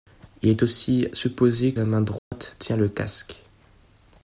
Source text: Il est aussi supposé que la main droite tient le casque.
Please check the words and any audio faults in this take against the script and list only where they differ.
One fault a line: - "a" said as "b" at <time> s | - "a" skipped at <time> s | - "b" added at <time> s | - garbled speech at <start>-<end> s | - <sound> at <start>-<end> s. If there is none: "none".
- "que" skipped at 1.7 s
- dropout at 2.2-2.3 s